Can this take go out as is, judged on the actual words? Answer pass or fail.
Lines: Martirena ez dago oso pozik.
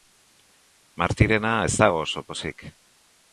pass